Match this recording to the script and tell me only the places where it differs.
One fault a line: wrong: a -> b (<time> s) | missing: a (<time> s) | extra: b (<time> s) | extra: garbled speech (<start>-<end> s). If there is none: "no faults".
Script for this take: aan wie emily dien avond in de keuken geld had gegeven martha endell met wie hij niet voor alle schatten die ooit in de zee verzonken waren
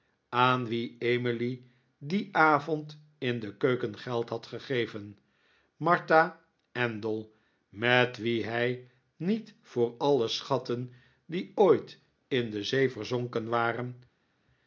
no faults